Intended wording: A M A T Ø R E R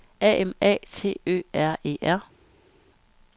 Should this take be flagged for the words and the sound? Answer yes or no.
no